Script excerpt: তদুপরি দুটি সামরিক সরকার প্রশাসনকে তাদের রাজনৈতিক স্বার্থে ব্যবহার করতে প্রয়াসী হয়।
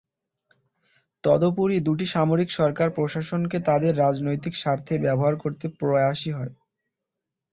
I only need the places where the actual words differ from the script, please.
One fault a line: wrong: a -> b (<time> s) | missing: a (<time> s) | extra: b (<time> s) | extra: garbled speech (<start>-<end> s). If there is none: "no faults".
no faults